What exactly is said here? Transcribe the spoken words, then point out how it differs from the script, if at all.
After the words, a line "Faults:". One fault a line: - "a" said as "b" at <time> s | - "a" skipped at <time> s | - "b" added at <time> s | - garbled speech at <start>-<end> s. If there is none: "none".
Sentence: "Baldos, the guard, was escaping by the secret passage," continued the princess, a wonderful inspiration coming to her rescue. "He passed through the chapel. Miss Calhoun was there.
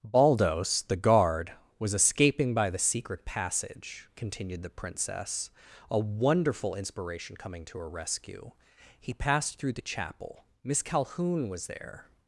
"Baldos, the guard, was escaping by the secret passage," continued the princess, a wonderful inspiration coming to her rescue. "He passed through the chapel. Miss Calhoun was there.
Faults:
none